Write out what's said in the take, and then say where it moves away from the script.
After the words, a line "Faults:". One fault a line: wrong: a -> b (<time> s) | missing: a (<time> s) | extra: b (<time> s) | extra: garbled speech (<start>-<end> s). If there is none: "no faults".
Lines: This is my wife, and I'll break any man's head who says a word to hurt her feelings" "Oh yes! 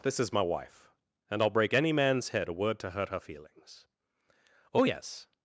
This is my wife, and I'll break any man's head a word to hurt her feelings" "Oh yes!
Faults:
missing: who says (2.5 s)